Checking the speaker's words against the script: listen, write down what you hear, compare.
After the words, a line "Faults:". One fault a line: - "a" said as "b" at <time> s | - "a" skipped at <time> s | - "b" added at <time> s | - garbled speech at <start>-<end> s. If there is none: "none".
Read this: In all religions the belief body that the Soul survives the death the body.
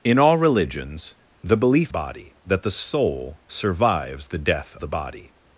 In all religions the belief body that the Soul survives the death the body.
Faults:
none